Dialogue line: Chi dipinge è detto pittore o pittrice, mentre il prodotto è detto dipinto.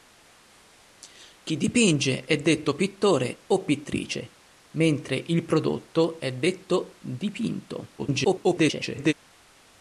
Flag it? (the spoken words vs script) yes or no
yes